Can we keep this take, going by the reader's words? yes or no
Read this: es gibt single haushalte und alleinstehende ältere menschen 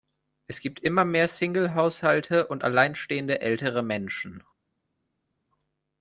no